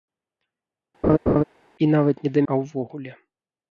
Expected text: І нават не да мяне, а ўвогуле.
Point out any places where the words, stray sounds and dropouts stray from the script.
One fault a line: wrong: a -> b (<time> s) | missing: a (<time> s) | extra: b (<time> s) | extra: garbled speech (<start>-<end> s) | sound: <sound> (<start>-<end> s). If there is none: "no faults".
sound: laugh (1.0-1.4 s)
missing: мяне (2.4 s)